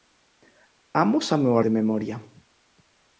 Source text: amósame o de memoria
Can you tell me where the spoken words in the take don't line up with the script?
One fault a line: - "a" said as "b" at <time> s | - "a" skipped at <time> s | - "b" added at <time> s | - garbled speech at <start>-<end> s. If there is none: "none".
none